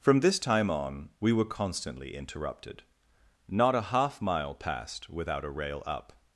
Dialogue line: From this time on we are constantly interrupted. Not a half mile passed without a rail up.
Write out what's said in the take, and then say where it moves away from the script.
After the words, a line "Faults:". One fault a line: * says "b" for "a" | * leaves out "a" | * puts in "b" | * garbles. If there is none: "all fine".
From this time on we were constantly interrupted. Not a half mile passed without a rail up.
Faults:
* says "were" for "are"